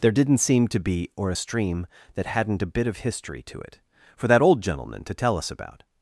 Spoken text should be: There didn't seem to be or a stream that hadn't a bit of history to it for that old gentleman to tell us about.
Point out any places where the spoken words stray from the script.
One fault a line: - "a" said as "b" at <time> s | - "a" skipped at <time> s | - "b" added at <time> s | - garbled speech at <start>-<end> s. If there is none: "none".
none